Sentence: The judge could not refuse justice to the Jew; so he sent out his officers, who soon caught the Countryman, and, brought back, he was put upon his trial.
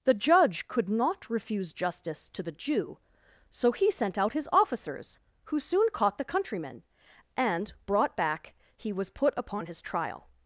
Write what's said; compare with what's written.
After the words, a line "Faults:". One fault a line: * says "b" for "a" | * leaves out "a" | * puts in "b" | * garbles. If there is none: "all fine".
The judge could not refuse justice to the Jew; so he sent out his officers, who soon caught the Countryman, and, brought back, he was put upon his trial.
Faults:
all fine